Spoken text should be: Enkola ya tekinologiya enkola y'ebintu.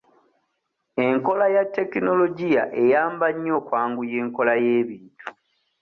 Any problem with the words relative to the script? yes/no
yes